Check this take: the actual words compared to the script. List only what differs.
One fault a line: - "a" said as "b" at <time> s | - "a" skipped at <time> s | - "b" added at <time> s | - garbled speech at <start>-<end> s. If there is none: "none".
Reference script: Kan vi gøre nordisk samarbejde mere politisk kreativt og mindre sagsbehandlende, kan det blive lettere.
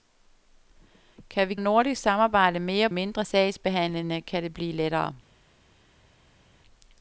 - "gøre" skipped at 1.6 s
- "politisk kreativt og" skipped at 2.9 s